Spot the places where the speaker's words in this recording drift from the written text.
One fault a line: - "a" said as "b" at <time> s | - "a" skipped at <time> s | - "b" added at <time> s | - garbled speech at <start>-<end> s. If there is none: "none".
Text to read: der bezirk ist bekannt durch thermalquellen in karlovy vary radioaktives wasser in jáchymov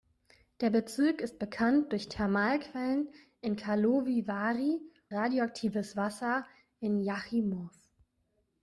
none